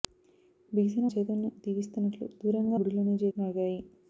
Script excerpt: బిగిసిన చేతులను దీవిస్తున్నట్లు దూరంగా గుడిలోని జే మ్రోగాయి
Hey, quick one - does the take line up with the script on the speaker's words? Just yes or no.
yes